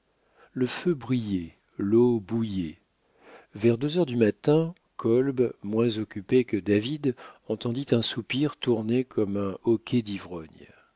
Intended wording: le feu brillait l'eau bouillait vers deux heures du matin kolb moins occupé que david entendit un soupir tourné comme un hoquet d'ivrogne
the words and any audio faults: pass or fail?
pass